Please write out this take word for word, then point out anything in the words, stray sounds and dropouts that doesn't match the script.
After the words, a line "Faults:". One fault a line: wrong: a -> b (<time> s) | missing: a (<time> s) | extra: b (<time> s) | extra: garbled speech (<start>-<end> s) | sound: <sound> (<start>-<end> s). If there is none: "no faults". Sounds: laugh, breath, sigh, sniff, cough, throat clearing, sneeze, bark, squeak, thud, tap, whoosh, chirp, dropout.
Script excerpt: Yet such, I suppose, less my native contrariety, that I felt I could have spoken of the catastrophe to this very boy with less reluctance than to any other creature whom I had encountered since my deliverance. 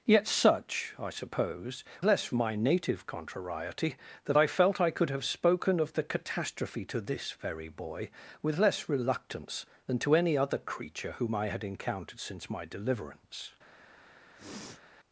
Yet such, I suppose, less my native contrariety, that I felt I could have spoken of the catastrophe to this very boy with less reluctance than to any other creature whom I had encountered since my deliverance.
Faults:
sound: sniff (14.3-14.8 s)